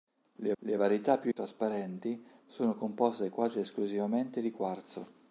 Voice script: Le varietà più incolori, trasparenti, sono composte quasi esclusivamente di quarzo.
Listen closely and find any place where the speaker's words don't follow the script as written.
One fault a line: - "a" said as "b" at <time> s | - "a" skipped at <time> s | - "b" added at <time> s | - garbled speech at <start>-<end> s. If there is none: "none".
- "le" added at 0.6 s
- "incolori" skipped at 1.3 s